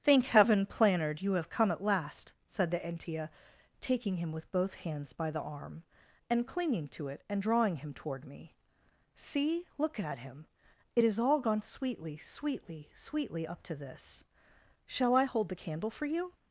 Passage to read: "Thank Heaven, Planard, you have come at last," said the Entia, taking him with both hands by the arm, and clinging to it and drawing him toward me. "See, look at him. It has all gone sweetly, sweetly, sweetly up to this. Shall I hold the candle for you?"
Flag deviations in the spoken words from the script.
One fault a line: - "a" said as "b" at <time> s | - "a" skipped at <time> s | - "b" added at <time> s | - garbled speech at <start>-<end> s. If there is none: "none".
none